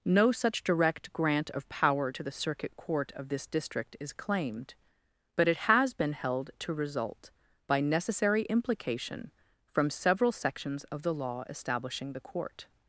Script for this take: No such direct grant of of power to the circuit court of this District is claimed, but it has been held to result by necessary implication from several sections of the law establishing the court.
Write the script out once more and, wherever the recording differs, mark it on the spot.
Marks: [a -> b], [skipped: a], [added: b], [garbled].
No such direct grant of [skipped: of] power to the circuit court of this District is claimed, but it has been held to result by necessary implication from several sections of the law establishing the court.